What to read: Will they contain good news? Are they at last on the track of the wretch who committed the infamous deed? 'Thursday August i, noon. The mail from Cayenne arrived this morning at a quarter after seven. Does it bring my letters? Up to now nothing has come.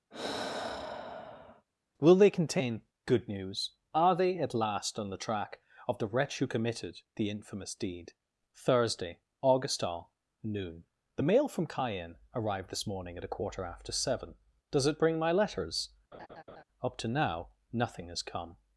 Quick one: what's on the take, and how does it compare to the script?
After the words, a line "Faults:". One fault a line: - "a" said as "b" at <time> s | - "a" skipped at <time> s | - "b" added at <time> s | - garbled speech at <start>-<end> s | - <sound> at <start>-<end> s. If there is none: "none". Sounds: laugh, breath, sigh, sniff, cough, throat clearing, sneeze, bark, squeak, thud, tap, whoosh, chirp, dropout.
Will they contain good news? Are they at last on the track of the wretch who committed the infamous deed? 'Thursday August all, noon. The mail from Cayenne arrived this morning at a quarter after seven. Does it bring my letters? Up to now nothing has come.
Faults:
- sigh at 0.1-1.7 s
- "i" said as "all" at 9.8 s
- laugh at 16.1-16.6 s